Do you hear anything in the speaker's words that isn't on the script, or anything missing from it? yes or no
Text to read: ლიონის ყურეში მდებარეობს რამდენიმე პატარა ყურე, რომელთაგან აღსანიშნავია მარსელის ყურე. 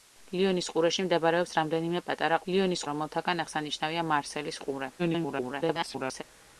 yes